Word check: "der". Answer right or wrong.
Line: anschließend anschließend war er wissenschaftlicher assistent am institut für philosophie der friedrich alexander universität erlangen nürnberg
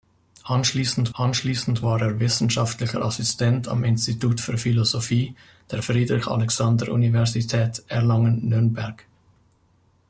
right